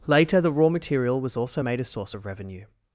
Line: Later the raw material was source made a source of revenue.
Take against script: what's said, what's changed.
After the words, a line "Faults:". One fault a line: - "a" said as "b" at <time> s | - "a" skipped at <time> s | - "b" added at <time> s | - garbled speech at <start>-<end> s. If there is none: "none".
Later the raw material was also made a source of revenue.
Faults:
- "source" said as "also" at 1.4 s